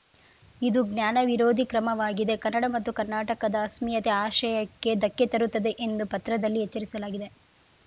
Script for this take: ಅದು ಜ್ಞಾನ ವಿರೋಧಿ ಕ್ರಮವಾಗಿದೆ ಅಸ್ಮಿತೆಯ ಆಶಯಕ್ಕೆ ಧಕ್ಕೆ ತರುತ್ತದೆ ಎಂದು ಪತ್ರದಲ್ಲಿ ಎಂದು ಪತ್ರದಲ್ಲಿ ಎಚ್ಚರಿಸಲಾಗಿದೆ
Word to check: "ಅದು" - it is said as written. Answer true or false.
false